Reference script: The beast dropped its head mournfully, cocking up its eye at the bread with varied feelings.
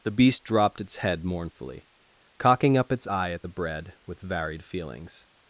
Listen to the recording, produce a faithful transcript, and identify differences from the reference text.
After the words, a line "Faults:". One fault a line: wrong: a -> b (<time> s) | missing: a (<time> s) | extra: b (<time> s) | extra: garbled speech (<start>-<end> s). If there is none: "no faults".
The beast dropped its head mournfully, cocking up its eye at the bread with varied feelings.
Faults:
no faults